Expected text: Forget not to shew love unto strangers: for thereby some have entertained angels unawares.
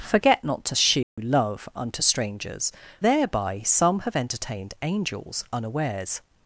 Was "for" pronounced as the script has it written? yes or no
no